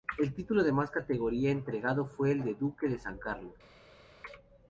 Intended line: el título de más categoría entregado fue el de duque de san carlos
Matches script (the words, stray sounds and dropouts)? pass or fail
pass